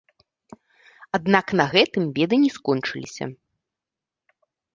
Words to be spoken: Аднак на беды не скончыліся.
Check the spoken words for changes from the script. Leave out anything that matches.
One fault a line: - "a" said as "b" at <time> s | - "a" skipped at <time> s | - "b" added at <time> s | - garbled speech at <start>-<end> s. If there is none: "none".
- "гэтым" added at 1.7 s